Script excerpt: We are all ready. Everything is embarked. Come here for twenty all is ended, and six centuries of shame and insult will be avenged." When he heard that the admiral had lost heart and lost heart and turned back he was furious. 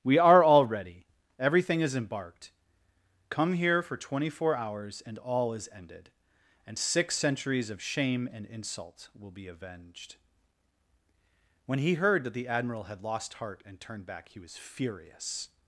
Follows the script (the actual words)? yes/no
no